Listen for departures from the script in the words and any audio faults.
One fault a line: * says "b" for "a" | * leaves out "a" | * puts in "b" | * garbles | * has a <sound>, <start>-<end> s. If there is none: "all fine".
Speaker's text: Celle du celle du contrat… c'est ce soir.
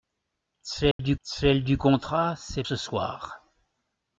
* has a dropout, 0.9-1.0 s